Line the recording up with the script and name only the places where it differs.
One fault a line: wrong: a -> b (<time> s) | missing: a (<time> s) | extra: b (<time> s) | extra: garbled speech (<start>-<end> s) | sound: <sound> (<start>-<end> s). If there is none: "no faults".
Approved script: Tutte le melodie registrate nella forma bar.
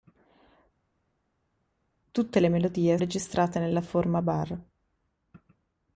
no faults